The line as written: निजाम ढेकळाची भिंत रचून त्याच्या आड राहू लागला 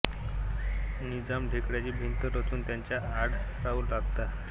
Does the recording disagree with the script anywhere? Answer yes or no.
no